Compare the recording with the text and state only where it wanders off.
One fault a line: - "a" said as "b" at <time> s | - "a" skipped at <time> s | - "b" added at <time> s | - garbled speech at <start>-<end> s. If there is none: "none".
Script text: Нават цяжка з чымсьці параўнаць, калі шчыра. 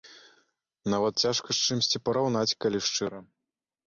none